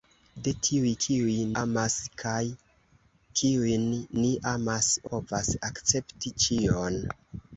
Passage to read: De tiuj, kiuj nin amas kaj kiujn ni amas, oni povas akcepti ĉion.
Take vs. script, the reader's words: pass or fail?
fail